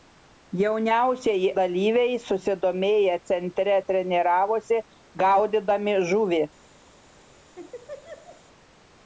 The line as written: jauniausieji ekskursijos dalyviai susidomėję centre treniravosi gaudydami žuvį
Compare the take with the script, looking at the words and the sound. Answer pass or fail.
fail